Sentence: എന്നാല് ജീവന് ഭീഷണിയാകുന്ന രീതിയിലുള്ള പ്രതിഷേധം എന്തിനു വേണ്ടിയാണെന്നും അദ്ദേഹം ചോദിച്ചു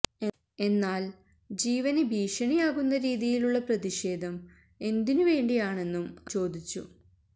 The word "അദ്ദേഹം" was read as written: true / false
false